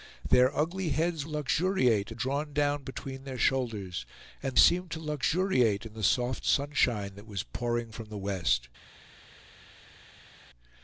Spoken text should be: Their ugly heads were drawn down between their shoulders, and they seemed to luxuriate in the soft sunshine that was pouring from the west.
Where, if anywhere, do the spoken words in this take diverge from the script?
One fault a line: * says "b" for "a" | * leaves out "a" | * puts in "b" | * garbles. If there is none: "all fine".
* says "luxuriate" for "were"
* leaves out "they"